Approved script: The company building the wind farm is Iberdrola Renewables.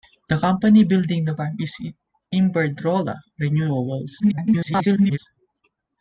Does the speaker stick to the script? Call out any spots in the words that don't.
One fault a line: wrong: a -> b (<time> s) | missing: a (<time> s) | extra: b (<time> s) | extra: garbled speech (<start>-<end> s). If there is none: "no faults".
missing: wind (1.4 s)
extra: garbled speech (4.2-5.2 s)